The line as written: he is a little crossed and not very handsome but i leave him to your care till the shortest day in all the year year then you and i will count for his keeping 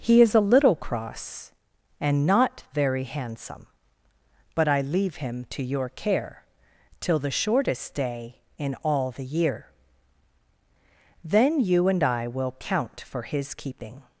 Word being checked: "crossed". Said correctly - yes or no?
no